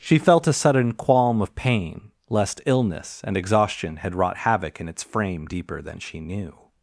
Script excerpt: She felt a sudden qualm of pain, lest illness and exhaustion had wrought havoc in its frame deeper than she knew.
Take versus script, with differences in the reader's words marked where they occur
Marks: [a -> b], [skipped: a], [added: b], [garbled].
She felt a sudden qualm of pain, lest illness and exhaustion had wrought havoc in its frame deeper than she knew.